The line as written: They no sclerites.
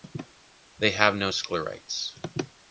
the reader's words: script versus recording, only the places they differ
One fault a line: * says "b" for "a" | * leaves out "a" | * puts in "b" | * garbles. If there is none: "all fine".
* puts in "have"